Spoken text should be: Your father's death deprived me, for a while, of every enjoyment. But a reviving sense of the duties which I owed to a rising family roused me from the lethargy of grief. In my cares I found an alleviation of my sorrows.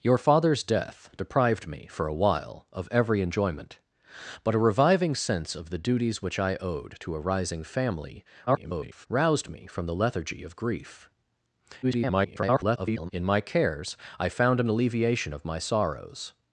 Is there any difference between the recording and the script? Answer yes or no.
yes